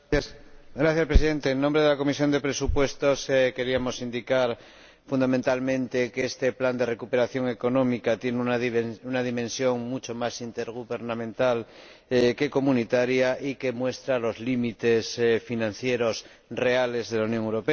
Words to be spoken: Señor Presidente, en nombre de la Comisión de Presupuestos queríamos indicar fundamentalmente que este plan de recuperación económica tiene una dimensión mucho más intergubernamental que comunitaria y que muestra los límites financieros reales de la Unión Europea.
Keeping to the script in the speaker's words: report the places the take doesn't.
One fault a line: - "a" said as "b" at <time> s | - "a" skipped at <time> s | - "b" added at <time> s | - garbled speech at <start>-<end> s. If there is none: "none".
none